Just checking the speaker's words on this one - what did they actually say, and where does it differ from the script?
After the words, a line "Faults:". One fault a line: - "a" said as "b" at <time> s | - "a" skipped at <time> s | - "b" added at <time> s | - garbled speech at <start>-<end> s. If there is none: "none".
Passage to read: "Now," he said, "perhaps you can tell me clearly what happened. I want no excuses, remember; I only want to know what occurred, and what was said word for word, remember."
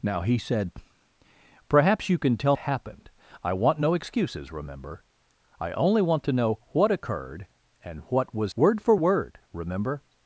"Now," he said, "perhaps you can tell happened. I want no excuses, remember; I only want to know what occurred, and what was word for word, remember."
Faults:
- "me clearly what" skipped at 2.6 s
- "said" skipped at 8.5 s